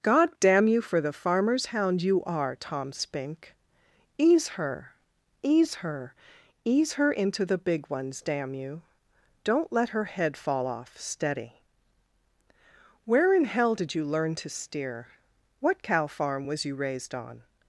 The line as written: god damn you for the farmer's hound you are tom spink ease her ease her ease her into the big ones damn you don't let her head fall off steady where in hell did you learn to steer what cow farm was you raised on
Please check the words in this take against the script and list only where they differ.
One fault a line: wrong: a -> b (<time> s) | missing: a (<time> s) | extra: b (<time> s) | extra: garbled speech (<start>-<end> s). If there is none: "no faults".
no faults